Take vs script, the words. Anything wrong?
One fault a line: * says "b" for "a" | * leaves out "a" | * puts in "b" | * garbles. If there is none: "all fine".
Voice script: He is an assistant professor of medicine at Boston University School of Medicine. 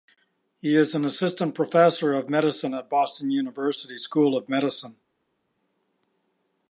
all fine